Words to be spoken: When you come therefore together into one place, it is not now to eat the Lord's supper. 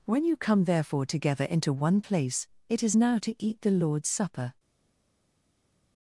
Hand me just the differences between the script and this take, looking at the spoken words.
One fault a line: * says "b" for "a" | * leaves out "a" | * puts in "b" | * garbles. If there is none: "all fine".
* leaves out "not"